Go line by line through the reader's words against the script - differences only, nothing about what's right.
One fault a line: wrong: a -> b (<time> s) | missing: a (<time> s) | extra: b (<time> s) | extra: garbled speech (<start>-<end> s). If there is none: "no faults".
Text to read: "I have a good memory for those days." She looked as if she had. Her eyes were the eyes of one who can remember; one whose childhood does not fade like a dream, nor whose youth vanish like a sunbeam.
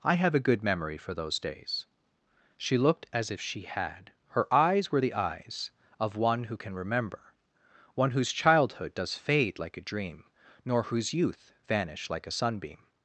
missing: not (9.2 s)